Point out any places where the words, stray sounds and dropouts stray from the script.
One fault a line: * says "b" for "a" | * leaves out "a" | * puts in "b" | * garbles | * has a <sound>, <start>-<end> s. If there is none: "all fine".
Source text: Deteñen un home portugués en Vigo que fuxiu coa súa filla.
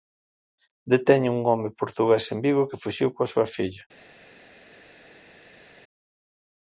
all fine